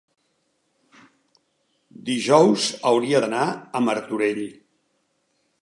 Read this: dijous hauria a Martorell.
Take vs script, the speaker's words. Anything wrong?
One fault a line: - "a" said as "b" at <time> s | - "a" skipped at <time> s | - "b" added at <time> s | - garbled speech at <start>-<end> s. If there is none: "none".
- "d'anar" added at 3.2 s